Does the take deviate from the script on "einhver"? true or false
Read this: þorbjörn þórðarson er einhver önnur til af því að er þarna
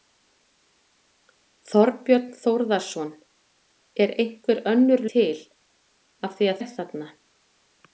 false